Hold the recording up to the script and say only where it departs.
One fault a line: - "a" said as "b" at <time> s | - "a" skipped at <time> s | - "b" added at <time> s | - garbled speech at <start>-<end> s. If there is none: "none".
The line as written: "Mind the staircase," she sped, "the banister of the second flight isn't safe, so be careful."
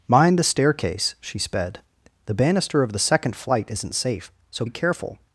none